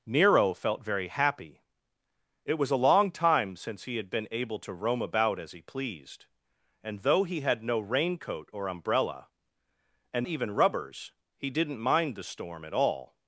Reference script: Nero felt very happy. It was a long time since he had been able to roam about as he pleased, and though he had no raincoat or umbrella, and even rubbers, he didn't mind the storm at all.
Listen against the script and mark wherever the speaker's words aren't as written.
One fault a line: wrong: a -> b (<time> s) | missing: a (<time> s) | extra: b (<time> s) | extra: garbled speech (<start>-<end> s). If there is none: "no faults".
no faults